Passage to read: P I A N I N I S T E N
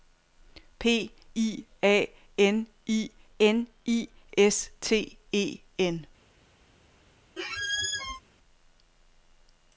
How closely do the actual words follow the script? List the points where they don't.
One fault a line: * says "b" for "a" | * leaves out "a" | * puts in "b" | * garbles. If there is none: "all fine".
all fine